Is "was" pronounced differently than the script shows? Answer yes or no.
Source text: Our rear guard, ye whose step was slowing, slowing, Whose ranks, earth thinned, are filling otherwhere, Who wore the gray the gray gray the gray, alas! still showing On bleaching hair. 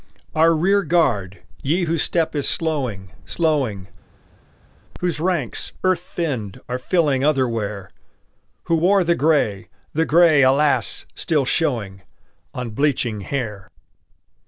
yes